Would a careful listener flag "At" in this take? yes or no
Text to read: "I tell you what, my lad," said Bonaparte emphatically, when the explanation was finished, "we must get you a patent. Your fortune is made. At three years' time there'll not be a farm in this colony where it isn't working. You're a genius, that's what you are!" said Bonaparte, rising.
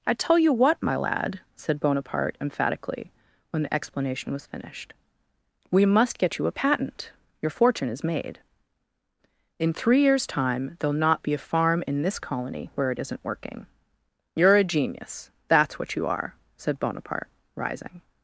yes